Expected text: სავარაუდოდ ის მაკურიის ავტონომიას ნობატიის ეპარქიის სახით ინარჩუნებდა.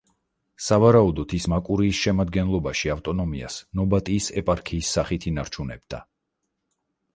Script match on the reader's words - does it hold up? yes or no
no